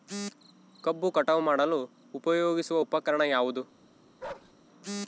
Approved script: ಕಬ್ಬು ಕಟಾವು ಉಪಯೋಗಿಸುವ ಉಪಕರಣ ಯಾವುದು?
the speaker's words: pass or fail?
fail